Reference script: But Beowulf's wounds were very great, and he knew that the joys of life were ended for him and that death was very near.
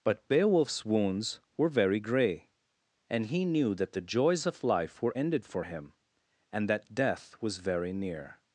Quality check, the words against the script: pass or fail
fail